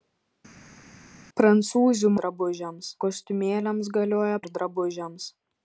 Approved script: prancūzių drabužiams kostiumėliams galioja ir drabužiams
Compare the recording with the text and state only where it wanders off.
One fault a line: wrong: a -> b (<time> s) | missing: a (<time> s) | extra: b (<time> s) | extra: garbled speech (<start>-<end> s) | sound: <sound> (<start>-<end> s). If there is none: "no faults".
no faults